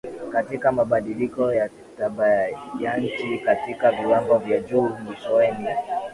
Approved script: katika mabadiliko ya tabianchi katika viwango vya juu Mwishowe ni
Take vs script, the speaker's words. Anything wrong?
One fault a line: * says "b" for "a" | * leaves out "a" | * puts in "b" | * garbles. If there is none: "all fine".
all fine